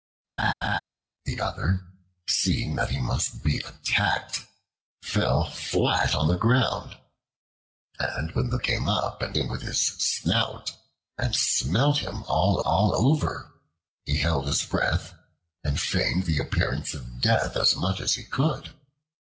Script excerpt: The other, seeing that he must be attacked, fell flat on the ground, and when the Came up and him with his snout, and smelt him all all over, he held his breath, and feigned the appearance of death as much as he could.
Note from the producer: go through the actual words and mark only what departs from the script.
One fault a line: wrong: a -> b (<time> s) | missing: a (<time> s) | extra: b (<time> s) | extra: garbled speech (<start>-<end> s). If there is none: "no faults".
no faults